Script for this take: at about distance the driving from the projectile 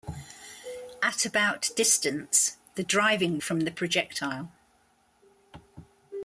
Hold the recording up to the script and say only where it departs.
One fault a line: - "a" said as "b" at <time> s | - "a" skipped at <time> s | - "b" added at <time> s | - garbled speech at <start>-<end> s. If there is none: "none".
none